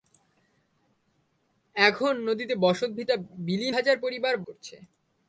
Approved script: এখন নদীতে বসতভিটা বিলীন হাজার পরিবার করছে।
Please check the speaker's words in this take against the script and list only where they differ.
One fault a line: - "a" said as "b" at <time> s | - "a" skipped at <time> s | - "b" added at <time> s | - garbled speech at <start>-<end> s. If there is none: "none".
none